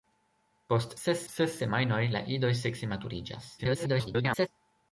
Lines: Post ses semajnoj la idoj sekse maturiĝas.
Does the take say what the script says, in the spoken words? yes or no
no